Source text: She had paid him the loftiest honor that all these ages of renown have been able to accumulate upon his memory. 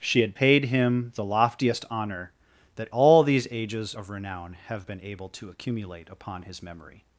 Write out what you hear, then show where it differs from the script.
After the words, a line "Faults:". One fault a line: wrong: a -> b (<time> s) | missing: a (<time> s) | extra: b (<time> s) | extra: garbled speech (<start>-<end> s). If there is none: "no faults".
She had paid him the loftiest honor that all these ages of renown have been able to accumulate upon his memory.
Faults:
no faults